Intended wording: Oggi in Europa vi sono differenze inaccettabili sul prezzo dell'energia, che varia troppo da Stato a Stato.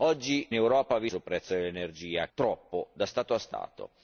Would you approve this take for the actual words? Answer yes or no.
no